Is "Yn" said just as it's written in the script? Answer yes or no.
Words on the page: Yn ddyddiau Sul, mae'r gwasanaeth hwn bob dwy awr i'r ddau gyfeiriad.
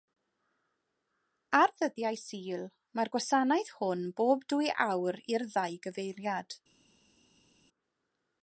no